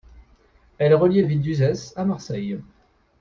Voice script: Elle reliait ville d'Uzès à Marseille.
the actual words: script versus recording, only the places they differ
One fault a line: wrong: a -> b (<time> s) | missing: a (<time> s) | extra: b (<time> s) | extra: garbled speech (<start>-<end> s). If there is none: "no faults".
no faults